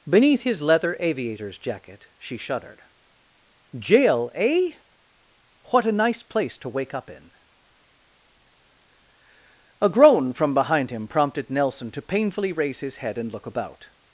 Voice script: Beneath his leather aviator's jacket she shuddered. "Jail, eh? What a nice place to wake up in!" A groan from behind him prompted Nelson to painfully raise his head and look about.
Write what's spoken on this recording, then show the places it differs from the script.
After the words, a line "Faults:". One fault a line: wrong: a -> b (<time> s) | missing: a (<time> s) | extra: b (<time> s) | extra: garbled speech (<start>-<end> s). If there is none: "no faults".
Beneath his leather aviator's jacket she shuddered. "Jail, eh? What a nice place to wake up in!" A groan from behind him prompted Nelson to painfully raise his head and look about.
Faults:
no faults